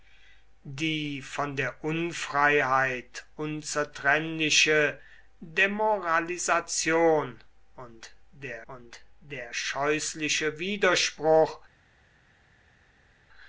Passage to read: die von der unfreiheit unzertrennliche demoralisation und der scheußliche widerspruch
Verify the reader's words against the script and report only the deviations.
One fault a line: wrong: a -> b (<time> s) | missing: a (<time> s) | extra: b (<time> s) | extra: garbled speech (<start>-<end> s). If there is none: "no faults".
extra: und der (8.7 s)